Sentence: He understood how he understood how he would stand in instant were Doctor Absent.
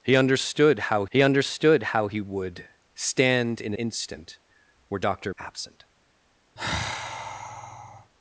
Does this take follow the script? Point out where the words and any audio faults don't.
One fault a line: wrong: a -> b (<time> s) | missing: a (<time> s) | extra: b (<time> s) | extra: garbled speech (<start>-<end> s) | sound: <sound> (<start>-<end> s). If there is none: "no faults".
sound: sigh (6.6-8.1 s)